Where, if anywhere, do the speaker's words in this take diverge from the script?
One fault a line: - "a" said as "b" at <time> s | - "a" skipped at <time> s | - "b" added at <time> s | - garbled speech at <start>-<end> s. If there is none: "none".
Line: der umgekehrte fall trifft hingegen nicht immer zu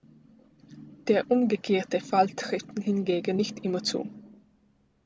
none